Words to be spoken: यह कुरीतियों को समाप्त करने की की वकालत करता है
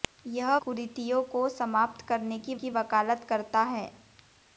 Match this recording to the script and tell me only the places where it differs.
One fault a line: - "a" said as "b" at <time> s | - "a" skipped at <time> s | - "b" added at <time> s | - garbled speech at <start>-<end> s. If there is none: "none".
none